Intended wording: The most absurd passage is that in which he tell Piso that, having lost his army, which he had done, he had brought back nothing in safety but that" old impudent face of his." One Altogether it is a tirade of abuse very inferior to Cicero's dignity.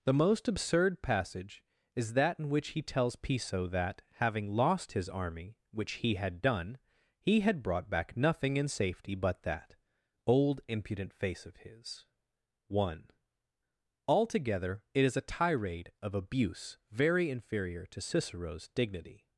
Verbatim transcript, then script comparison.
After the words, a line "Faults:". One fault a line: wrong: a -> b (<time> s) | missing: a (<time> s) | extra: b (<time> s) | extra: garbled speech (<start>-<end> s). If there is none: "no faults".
The most absurd passage is that in which he tells Piso that, having lost his army, which he had done, he had brought back nothing in safety but that" old impudent face of his." One Altogether it is a tirade of abuse very inferior to Cicero's dignity.
Faults:
wrong: tell -> tells (2.8 s)